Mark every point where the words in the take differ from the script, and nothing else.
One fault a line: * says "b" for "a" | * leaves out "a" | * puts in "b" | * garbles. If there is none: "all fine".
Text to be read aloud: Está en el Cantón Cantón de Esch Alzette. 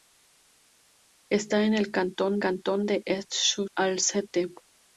all fine